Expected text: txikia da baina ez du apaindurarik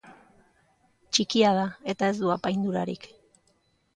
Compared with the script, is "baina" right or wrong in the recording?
wrong